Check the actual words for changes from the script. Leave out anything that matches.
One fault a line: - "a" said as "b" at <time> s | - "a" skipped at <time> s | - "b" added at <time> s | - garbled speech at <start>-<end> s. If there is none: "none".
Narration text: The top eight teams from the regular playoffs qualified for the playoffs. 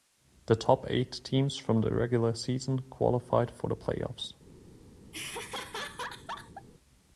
- "playoffs" said as "season" at 2.3 s